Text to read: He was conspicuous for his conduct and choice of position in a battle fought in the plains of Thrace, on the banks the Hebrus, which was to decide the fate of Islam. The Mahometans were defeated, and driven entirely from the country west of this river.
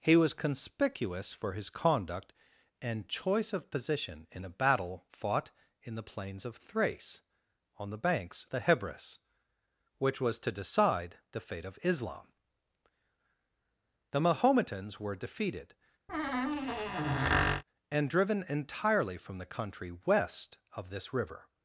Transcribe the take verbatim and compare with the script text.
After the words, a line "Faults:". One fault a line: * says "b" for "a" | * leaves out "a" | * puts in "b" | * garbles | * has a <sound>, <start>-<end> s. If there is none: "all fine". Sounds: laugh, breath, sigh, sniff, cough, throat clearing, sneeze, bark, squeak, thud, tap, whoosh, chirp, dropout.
He was conspicuous for his conduct and choice of position in a battle fought in the plains of Thrace, on the banks the Hebrus, which was to decide the fate of Islam. The Mahometans were defeated, and driven entirely from the country west of this river.
Faults:
* has a squeak, 16.1-17.6 s